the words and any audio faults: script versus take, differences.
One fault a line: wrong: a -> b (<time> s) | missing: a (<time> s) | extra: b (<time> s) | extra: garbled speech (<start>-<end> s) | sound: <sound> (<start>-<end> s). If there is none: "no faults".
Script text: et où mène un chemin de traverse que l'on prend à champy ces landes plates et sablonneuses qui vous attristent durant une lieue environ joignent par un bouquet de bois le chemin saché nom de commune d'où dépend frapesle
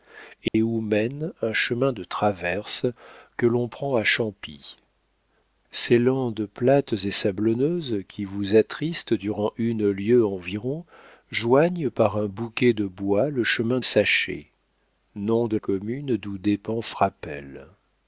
sound: dropout (0.5-0.5 s)